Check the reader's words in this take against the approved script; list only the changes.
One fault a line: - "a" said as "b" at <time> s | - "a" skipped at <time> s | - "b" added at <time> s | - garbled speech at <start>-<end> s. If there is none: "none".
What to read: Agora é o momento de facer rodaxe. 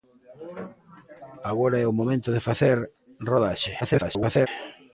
- garbled speech at 3.8-4.5 s